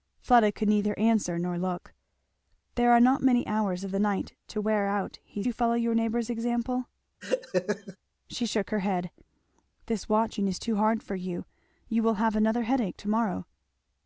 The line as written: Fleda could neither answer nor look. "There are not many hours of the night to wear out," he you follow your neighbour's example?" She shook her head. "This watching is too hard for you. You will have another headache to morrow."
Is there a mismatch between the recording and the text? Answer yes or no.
no